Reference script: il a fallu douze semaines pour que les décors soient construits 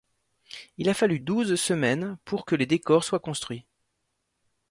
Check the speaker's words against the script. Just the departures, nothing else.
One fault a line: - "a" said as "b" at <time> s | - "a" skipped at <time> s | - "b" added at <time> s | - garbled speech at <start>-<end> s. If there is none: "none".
none